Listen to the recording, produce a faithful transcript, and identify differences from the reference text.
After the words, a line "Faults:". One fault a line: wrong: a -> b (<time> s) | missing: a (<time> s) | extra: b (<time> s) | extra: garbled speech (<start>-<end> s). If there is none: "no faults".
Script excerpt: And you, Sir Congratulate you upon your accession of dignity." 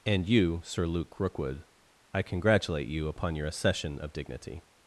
And you, Sir Luke Rookwood, I congratulate you upon your accession of dignity."
Faults:
extra: Luke Rookwood I (0.9 s)